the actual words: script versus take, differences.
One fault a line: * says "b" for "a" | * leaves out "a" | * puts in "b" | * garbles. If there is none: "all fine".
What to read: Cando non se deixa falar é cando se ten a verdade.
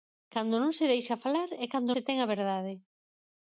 all fine